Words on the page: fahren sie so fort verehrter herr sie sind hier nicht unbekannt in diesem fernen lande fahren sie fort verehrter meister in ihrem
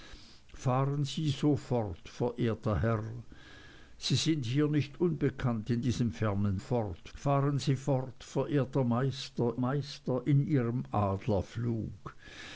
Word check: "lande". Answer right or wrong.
wrong